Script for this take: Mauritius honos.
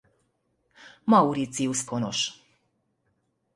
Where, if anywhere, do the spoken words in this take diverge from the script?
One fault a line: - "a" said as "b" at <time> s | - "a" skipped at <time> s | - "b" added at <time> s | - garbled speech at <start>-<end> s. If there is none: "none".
none